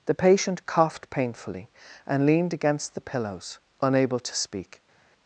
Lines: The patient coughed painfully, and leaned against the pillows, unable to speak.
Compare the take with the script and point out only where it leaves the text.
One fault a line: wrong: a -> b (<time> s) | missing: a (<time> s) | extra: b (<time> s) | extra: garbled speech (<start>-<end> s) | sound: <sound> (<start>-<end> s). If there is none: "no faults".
no faults